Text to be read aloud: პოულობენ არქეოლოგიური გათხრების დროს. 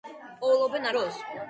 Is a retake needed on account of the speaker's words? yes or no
yes